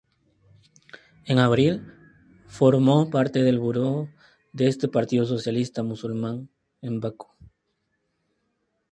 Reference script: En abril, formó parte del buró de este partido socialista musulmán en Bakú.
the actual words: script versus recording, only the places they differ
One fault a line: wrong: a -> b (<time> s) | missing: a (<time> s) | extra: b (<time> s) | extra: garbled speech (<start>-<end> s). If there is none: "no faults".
no faults